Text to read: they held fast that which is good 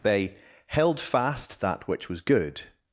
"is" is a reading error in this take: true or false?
true